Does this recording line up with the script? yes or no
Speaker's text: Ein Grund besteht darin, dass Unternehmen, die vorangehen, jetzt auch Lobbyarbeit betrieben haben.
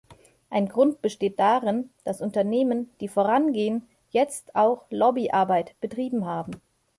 yes